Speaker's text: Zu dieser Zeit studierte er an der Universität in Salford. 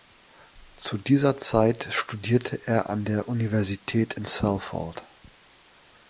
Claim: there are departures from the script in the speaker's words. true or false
false